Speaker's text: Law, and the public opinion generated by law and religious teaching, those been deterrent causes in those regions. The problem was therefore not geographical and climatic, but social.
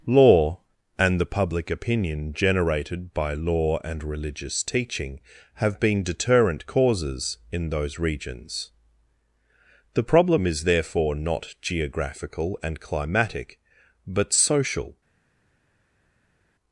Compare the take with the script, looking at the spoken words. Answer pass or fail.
fail